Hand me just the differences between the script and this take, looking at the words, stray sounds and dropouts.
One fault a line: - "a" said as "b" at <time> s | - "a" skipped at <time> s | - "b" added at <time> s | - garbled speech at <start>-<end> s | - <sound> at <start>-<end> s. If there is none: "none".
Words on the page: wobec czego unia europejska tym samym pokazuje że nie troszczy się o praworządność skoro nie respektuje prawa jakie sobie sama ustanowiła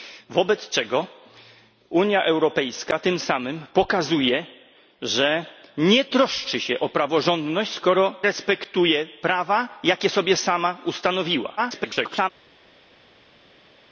- "nie" skipped at 8.1 s
- garbled speech at 11.6-12.3 s